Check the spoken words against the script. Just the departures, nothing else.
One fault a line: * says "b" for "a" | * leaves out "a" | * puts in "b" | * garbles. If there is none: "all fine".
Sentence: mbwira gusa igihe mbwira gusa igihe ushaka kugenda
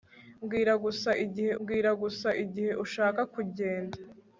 all fine